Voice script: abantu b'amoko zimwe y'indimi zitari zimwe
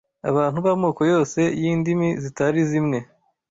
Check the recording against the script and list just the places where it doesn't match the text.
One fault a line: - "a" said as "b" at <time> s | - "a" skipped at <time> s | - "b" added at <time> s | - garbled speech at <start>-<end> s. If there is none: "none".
- "zimwe" said as "yose" at 1.1 s